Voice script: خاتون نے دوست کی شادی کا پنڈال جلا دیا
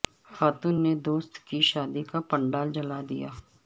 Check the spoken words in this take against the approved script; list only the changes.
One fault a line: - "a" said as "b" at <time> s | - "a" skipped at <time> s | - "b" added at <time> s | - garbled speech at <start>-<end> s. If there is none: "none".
none